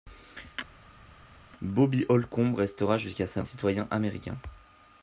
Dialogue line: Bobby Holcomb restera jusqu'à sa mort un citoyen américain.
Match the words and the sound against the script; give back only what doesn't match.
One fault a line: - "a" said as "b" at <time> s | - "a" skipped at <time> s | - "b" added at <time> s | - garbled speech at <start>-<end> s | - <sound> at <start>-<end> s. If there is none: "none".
- "mort" skipped at 3.4 s